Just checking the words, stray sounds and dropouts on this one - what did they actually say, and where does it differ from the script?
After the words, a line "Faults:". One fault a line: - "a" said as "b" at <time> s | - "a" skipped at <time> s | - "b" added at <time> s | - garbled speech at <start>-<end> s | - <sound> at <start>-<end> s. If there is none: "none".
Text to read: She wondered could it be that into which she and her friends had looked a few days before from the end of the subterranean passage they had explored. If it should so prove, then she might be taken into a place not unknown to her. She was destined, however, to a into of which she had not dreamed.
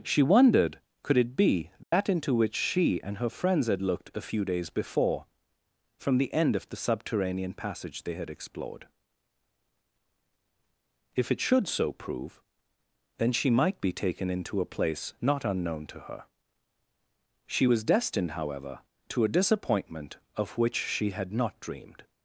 She wondered could it be that into which she and her friends had looked a few days before from the end of the subterranean passage they had explored. If it should so prove, then she might be taken into a place not unknown to her. She was destined, however, to a disappointment of which she had not dreamed.
Faults:
- dropout at 1.8-1.9 s
- "into" said as "disappointment" at 19.3 s